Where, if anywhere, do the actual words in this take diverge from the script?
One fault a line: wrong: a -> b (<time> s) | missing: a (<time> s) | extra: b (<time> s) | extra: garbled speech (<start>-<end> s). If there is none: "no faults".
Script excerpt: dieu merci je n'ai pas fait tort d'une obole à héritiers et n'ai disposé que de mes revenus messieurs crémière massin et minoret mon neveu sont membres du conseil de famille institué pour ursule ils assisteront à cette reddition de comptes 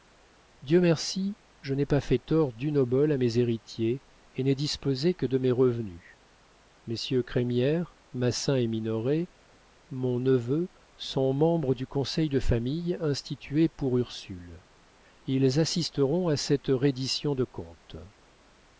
extra: mes (3.2 s)